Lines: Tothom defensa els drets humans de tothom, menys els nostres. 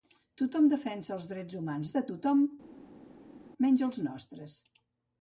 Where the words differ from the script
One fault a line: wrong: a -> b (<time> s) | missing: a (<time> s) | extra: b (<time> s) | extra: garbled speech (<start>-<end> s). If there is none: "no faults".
no faults